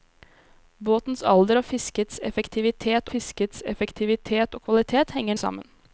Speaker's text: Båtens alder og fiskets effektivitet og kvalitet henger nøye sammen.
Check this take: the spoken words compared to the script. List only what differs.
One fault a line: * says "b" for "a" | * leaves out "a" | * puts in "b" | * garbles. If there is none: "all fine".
* puts in "fiskets effektivitet"
* leaves out "nøye"